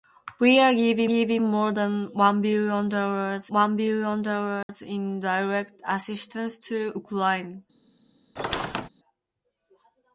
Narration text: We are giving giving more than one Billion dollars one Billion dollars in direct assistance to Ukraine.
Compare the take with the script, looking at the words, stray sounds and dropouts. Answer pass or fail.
fail